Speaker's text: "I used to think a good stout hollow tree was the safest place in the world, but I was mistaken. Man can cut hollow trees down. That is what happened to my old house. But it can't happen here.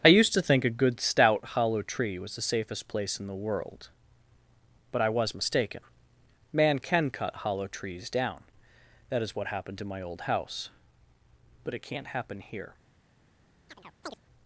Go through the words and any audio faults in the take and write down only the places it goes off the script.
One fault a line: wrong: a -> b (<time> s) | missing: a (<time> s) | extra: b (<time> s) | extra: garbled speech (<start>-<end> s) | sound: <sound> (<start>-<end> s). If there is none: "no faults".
sound: chirp (13.7-14.2 s)